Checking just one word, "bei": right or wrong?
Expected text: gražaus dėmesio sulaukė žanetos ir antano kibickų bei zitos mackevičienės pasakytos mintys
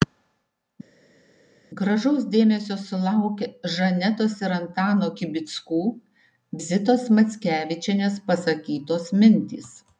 wrong